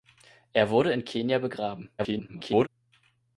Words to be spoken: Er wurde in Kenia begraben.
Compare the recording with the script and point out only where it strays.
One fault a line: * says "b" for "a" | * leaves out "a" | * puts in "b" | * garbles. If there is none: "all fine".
* garbles